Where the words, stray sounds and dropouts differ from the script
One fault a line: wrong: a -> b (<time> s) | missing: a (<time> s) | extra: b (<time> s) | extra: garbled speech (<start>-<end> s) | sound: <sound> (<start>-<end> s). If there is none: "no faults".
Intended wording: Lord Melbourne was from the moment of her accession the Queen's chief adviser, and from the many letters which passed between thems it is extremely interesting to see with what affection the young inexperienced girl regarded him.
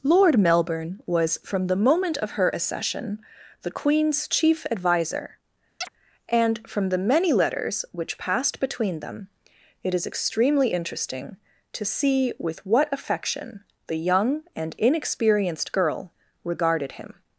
sound: chirp (5.8-5.9 s)
wrong: thems -> them (9.0 s)
extra: and (14.6 s)